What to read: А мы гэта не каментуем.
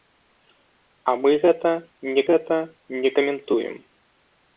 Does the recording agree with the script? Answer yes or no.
no